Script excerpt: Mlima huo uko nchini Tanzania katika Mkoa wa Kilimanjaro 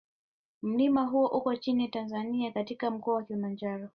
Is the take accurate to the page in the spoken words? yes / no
yes